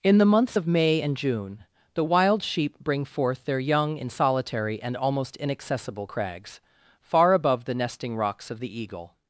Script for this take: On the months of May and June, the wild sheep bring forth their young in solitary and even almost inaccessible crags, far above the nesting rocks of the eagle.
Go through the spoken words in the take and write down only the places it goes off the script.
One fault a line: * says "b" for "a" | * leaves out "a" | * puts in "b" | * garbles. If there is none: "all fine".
* says "In" for "On"
* leaves out "even"